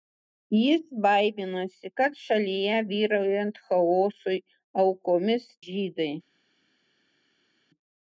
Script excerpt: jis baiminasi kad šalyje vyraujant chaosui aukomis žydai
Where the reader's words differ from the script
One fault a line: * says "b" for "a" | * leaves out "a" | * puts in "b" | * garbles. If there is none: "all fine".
all fine